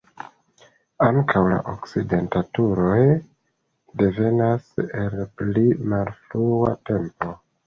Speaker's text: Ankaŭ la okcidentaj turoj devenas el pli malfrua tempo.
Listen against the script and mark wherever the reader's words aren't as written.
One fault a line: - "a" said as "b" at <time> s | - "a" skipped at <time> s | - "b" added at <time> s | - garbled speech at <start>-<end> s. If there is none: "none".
none